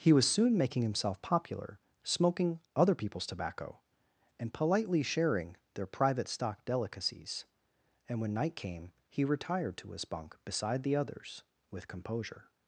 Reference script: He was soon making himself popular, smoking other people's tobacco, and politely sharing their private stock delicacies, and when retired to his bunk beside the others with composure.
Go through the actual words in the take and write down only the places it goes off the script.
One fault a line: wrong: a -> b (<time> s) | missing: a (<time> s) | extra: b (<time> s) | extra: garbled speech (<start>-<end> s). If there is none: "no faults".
extra: night came he (8.3 s)